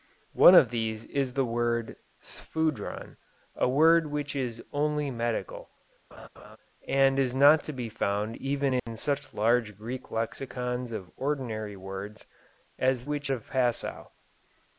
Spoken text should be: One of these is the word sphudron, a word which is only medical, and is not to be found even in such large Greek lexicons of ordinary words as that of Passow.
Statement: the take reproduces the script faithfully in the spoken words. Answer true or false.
false